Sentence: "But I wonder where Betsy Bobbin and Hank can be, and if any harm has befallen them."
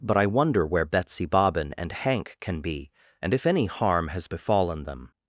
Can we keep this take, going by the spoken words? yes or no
yes